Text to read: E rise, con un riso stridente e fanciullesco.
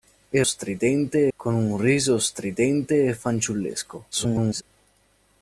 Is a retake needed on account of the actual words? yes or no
yes